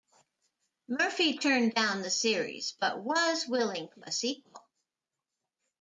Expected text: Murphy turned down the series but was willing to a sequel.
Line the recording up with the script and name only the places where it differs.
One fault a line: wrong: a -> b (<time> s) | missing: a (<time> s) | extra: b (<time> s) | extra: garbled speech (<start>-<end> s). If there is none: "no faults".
no faults